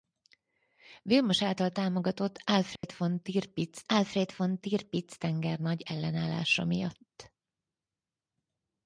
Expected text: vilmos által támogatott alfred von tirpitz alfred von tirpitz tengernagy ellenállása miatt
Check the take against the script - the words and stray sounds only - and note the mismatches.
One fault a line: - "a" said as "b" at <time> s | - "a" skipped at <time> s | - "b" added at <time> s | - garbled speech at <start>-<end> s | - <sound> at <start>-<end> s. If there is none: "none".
- dropout at 2.8-2.8 s